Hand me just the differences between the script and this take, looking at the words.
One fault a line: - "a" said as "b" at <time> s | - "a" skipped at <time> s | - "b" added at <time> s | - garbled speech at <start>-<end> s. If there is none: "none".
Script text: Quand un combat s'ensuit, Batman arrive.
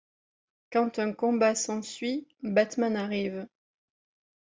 none